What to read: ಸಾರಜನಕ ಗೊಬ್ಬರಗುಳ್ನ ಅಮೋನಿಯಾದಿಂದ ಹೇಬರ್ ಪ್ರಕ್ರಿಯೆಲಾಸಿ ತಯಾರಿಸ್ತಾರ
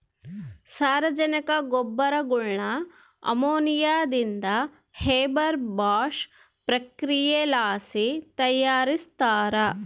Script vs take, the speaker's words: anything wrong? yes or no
yes